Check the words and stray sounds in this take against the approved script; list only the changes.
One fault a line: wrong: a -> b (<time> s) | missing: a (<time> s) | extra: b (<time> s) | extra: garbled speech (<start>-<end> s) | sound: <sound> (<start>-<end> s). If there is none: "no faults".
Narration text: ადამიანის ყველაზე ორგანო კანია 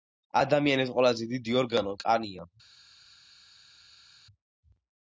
extra: დიდი (1.4 s)